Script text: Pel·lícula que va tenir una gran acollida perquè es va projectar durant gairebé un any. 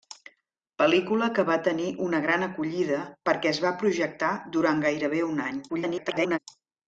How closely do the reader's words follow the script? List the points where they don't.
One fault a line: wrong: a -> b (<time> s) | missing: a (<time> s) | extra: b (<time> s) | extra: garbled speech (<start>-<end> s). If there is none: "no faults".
extra: garbled speech (5.7-6.4 s)